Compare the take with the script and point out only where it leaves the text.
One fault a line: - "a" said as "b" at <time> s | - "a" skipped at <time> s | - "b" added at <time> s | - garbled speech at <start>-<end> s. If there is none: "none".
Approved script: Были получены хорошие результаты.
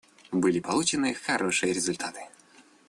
none